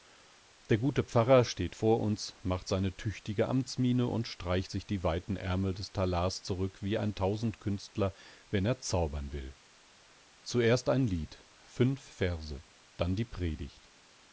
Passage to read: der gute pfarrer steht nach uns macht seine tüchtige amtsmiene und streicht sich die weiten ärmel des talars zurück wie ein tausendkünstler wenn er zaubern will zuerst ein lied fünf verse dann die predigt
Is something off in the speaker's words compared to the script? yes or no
yes